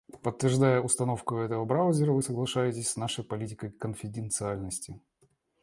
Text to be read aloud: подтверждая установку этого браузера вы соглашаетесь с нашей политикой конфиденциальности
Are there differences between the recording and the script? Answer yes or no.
no